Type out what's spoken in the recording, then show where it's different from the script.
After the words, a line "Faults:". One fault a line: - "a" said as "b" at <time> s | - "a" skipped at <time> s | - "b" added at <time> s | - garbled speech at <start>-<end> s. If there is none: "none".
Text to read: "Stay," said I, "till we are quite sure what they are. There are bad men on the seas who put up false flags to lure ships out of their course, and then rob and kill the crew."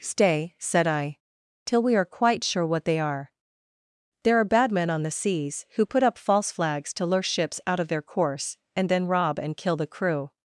"Stay," said I, "till we are quite sure what they are. There are bad men on the seas who put up false flags to lure ships out of their course, and then rob and kill the crew."
Faults:
none